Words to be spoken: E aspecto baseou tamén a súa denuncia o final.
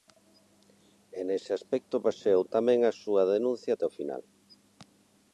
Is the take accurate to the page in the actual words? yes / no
no